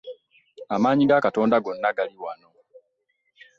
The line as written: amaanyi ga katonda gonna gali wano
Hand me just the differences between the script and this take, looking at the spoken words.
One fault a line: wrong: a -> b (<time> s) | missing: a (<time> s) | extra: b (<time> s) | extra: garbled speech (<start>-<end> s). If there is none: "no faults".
no faults